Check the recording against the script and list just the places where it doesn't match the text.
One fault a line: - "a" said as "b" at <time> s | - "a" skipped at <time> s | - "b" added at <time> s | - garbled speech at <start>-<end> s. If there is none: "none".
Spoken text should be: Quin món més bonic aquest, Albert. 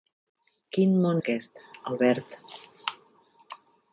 - "més bonic" skipped at 1.2 s